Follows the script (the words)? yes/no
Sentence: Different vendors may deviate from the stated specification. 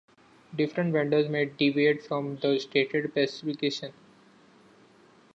yes